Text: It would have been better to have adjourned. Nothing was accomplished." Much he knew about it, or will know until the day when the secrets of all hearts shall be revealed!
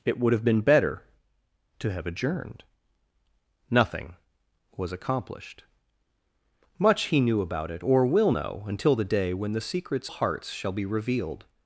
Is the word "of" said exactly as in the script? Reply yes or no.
no